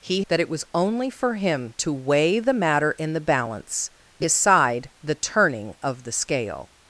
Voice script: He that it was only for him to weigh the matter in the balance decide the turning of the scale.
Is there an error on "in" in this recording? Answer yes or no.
no